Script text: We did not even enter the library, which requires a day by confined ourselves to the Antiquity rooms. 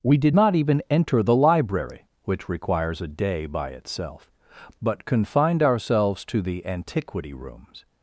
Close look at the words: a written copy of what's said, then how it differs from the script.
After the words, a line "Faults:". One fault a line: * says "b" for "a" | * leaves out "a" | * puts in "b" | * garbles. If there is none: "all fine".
We did not even enter the library, which requires a day by itself, but confined ourselves to the Antiquity rooms.
Faults:
* puts in "itself but"